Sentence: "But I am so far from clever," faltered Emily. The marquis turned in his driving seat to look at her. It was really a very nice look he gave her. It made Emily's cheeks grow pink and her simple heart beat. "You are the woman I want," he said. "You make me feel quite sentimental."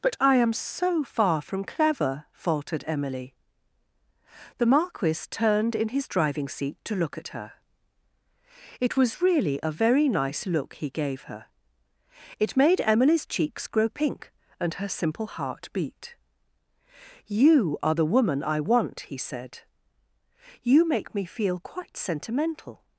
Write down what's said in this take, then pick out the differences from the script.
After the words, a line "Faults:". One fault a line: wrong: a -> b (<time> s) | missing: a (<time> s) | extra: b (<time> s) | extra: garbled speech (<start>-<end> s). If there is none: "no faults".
"But I am so far from clever," faltered Emily. The marquis turned in his driving seat to look at her. It was really a very nice look he gave her. It made Emily's cheeks grow pink and her simple heart beat. "You are the woman I want," he said. "You make me feel quite sentimental."
Faults:
no faults